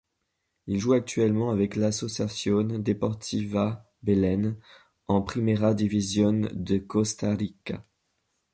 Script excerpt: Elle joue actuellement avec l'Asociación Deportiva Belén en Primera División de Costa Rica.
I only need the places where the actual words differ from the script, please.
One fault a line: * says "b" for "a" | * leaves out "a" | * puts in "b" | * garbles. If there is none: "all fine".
* says "Il" for "Elle"